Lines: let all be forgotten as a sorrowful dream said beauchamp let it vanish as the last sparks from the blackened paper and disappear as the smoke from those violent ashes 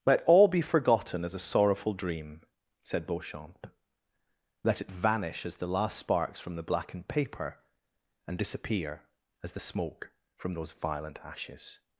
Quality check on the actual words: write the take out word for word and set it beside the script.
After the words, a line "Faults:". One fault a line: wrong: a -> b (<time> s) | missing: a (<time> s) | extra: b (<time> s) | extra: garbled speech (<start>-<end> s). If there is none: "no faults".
let all be forgotten as a sorrowful dream said beauchamp let it vanish as the last sparks from the blackened paper and disappear as the smoke from those violent ashes
Faults:
no faults